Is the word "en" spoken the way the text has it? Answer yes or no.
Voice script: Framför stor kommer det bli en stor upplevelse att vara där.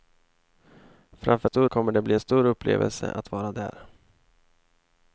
yes